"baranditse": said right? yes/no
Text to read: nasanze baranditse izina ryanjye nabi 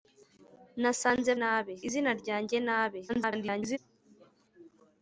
no